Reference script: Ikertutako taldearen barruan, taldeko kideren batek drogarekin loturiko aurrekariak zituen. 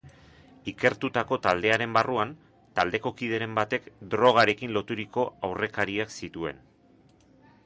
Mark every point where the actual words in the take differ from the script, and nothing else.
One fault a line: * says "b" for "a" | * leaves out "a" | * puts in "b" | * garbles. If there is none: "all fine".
all fine